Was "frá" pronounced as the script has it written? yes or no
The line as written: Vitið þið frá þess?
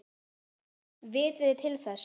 no